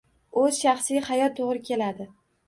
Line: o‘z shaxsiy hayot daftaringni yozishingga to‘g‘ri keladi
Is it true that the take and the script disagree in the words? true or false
true